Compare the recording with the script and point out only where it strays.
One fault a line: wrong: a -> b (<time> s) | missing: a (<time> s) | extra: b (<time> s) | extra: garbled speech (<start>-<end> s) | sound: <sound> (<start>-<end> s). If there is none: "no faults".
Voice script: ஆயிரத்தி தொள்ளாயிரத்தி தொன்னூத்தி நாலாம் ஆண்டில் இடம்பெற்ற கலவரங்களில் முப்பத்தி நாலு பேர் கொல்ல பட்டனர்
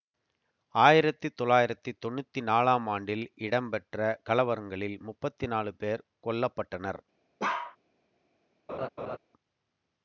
sound: bark (7.4-7.8 s)
sound: laugh (8.7-9.2 s)